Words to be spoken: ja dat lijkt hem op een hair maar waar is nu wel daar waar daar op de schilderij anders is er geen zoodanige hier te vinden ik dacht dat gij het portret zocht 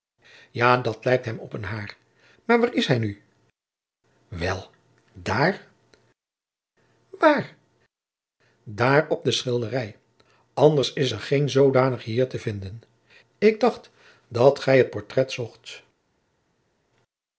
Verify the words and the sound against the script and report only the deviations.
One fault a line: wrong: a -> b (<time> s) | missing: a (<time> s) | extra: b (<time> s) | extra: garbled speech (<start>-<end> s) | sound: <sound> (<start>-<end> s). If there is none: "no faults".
extra: hij (2.9 s)